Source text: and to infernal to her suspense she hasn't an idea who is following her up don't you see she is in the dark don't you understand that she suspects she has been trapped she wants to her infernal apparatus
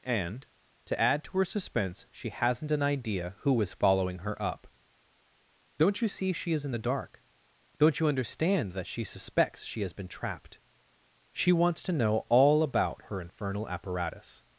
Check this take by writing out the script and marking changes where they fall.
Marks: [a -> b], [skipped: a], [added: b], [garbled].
and to [infernal -> add] to her suspense she hasn't an idea who is following her up don't you see she is in the dark don't you understand that she suspects she has been trapped she wants to [added: know all about] her infernal apparatus